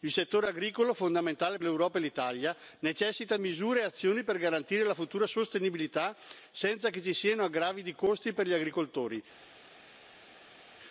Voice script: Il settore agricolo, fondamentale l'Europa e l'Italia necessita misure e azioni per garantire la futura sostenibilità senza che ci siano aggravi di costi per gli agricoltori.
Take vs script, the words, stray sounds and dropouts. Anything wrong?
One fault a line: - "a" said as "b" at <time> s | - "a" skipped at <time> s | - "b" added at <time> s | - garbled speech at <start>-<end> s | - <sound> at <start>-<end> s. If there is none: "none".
none